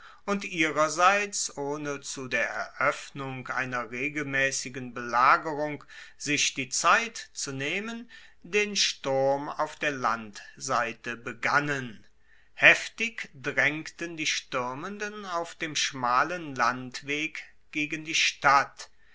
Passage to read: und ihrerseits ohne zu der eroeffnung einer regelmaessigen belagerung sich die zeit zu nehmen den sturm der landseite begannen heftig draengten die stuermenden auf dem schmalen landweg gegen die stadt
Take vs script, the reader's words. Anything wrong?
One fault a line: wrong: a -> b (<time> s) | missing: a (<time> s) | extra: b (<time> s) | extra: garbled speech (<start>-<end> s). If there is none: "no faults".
extra: auf (9.5 s)